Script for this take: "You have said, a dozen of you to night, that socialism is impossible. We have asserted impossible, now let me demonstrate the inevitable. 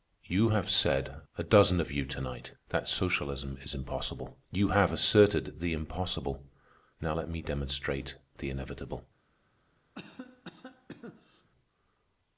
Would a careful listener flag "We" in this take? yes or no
yes